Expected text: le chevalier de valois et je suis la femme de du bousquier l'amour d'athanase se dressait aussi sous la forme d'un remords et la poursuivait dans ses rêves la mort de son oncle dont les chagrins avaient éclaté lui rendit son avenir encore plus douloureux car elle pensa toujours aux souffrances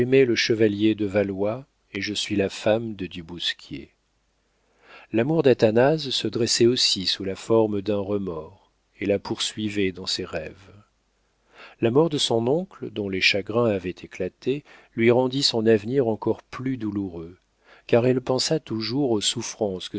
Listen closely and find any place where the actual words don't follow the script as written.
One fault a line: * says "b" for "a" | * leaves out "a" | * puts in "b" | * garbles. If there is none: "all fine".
all fine